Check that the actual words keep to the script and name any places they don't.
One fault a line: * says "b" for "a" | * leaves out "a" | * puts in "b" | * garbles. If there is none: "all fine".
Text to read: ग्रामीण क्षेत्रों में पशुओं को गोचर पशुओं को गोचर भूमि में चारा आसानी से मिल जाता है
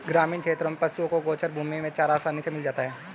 * leaves out "पशुओं को गोचर"